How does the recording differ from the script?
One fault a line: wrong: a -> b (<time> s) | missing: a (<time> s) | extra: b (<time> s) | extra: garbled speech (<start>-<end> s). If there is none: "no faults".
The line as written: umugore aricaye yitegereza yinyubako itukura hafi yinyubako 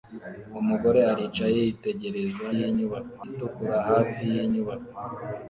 no faults